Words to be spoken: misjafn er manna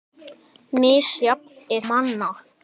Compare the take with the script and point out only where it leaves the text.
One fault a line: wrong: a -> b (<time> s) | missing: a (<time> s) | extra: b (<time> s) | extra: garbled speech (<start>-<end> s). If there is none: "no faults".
no faults